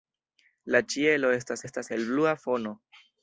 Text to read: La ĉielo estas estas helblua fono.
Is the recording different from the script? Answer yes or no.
no